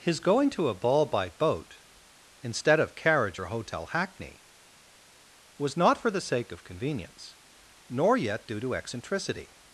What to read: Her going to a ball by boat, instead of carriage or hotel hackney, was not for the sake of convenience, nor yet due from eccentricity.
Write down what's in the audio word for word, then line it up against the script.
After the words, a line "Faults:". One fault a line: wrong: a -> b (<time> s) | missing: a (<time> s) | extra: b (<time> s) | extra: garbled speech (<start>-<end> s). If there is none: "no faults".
His going to a ball by boat, instead of carriage or hotel hackney, was not for the sake of convenience, nor yet due to eccentricity.
Faults:
wrong: Her -> His (0.0 s)
wrong: from -> to (8.6 s)